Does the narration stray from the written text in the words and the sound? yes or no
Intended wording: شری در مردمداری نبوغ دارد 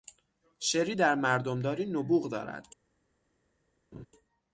yes